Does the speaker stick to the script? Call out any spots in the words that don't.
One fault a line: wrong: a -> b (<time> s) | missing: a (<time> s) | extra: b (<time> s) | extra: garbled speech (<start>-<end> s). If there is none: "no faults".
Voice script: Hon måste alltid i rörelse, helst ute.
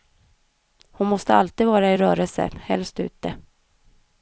extra: vara (1.7 s)